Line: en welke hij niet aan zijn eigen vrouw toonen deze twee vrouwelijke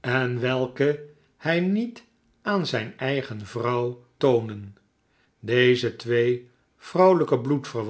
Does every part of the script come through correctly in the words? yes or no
yes